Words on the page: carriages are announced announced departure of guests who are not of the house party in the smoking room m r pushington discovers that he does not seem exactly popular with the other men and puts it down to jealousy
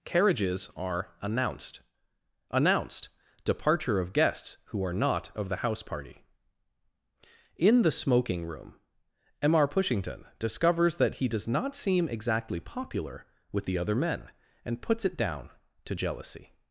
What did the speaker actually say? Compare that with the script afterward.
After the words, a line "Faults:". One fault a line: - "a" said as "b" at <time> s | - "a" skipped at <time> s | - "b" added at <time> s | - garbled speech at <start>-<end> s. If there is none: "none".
carriages are announced announced departure of guests who are not of the house party in the smoking room m r pushington discovers that he does not seem exactly popular with the other men and puts it down to jealousy
Faults:
none